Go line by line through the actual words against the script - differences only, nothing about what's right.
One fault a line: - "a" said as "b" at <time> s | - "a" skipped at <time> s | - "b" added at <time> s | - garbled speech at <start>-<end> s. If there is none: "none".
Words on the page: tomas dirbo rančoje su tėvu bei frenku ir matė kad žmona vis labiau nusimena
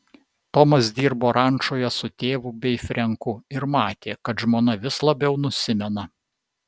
none